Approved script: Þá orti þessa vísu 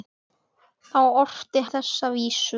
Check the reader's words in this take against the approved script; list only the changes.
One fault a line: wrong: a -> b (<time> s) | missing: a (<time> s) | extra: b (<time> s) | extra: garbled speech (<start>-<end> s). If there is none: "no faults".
no faults